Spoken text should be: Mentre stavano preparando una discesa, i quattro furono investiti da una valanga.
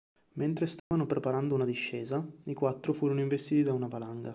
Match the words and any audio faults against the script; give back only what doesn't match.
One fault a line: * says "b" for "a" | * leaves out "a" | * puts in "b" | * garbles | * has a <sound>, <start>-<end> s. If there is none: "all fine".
* has a dropout, 0.8-0.9 s